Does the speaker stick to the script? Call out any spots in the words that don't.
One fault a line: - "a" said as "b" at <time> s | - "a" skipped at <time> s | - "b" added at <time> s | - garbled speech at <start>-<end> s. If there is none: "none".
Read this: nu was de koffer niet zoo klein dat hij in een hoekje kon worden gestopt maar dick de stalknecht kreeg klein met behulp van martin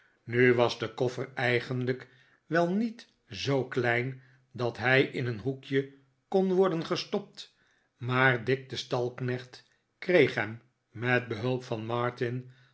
- "eigenlijk wel" added at 1.3 s
- "klein" said as "hem" at 10.3 s